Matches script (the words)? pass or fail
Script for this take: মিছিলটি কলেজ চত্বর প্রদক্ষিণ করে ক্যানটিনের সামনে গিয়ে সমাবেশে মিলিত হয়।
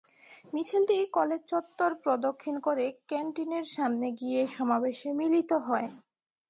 pass